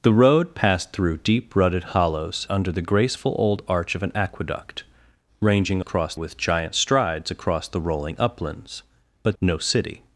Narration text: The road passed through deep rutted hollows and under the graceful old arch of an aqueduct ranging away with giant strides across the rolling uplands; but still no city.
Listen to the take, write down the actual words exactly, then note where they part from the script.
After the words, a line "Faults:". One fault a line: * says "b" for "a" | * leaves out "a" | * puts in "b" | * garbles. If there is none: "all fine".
The road passed through deep rutted hollows under the graceful old arch of an aqueduct ranging across with giant strides across the rolling uplands; but no city.
Faults:
* leaves out "and"
* says "across" for "away"
* leaves out "still"